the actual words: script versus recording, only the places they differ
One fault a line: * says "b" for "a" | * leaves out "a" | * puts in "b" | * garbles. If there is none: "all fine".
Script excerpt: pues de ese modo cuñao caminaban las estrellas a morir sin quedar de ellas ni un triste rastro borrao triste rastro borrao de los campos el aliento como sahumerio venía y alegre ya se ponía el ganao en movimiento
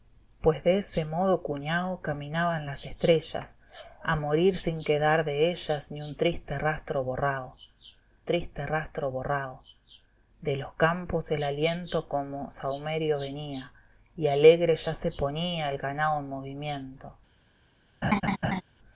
all fine